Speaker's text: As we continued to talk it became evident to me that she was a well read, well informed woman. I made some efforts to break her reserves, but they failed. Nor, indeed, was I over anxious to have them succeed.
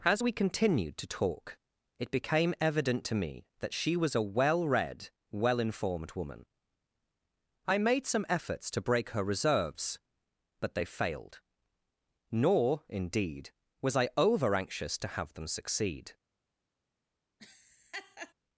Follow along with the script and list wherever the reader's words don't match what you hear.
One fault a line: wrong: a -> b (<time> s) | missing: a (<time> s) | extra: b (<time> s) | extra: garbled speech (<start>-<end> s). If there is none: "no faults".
no faults